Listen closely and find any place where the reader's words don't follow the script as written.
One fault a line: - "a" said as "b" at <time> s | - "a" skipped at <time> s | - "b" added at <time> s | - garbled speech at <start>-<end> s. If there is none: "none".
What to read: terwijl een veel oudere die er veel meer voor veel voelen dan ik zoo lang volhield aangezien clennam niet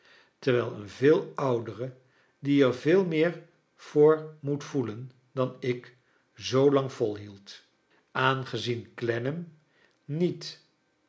- "veel" said as "moet" at 4.4 s